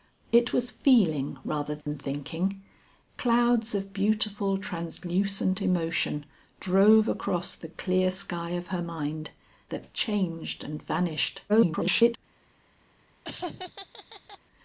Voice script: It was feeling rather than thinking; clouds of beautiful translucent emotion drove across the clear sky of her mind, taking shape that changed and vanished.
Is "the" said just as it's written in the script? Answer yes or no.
yes